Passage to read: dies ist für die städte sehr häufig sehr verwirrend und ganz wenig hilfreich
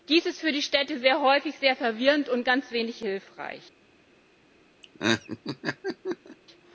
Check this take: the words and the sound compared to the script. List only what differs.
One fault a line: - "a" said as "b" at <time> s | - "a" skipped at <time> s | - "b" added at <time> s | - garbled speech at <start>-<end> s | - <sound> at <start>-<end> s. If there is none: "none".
- laugh at 4.8-6.4 s